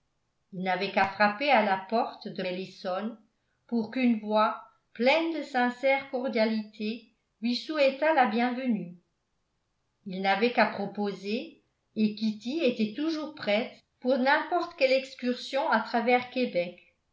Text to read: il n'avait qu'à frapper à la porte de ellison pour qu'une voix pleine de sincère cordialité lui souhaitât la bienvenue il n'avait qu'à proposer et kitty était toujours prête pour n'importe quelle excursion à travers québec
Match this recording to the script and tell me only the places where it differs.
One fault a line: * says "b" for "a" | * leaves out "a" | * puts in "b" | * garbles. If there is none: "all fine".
all fine